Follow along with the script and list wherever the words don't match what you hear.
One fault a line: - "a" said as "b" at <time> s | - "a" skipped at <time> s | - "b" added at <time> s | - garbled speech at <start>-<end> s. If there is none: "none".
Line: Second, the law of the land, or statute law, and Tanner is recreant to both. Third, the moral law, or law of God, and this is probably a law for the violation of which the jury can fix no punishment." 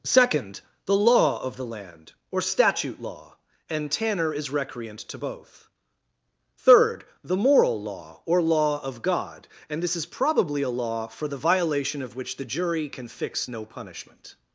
none